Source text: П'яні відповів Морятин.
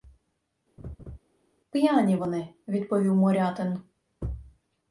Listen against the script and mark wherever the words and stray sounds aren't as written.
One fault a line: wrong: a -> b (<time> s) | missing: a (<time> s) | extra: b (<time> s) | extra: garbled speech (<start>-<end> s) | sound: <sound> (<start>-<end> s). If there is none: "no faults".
sound: laugh (0.8-1.2 s)
extra: вони (2.1 s)